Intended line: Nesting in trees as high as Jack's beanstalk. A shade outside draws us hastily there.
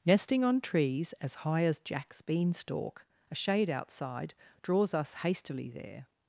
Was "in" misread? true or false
true